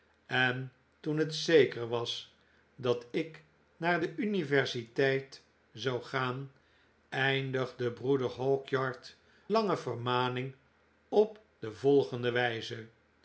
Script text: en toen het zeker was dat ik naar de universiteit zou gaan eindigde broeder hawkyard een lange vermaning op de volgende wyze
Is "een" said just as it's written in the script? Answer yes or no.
no